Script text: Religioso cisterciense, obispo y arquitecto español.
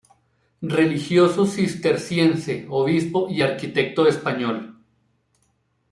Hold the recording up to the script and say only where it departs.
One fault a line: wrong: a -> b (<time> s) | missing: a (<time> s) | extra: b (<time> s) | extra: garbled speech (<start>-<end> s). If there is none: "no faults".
no faults